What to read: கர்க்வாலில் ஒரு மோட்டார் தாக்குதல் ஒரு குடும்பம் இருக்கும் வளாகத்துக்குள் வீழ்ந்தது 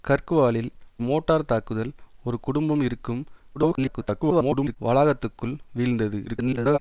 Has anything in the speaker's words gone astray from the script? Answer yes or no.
yes